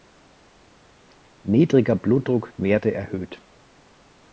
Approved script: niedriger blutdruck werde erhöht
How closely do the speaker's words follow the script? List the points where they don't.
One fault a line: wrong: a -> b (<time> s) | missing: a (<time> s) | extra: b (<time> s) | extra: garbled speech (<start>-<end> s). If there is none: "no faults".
no faults